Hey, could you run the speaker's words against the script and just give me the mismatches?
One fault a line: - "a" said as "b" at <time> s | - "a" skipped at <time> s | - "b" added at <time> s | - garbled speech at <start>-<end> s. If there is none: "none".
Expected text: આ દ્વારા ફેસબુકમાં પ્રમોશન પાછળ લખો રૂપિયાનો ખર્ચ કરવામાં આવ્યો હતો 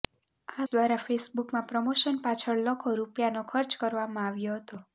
none